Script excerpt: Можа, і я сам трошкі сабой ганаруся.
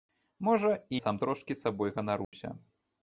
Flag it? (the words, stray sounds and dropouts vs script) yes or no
yes